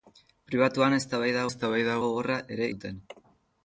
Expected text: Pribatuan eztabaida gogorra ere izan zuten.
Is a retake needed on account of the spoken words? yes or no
yes